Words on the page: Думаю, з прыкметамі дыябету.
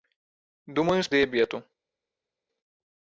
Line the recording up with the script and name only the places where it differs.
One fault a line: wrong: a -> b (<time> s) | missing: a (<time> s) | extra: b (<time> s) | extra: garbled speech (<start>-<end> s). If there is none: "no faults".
missing: прыкметамі (1.1 s)